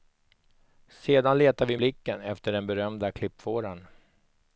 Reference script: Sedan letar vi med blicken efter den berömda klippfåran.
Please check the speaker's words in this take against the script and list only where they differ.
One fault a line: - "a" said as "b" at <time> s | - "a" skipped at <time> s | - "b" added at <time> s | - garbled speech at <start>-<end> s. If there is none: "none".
- "med" skipped at 1.8 s